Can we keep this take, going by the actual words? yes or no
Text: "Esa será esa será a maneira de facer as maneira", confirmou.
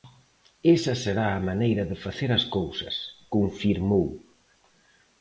no